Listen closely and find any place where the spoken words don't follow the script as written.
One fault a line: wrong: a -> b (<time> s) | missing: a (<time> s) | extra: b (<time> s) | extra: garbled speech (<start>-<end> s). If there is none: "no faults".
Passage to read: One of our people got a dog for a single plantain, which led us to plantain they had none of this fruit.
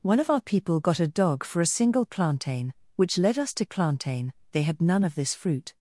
no faults